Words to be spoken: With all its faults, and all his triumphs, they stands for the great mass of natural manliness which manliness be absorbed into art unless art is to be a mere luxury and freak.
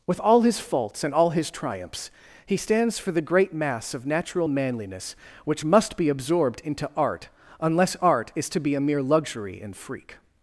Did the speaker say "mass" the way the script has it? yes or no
yes